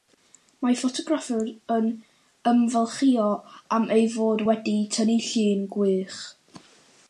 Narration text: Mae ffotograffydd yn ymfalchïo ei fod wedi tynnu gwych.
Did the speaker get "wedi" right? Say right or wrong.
right